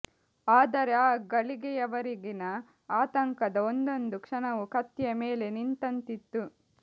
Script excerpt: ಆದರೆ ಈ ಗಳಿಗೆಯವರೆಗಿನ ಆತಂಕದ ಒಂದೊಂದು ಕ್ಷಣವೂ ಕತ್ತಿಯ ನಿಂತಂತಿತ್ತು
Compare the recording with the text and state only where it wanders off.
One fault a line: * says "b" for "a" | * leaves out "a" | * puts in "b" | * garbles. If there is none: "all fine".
* says "ಆ" for "ಈ"
* puts in "ಮೇಲೆ"